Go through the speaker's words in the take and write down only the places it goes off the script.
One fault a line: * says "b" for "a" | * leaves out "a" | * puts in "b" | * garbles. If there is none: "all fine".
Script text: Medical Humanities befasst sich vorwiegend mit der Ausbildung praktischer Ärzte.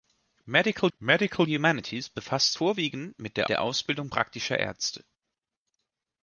* puts in "medical"
* leaves out "sich"
* puts in "der"